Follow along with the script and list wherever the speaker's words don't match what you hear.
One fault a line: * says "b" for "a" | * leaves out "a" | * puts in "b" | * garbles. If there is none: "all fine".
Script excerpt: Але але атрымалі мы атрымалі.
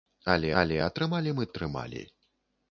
all fine